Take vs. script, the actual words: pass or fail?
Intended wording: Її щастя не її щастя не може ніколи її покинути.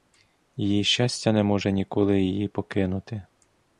fail